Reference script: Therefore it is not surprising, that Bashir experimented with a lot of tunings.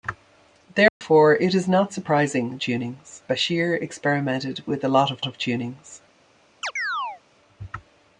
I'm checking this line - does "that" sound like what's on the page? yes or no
no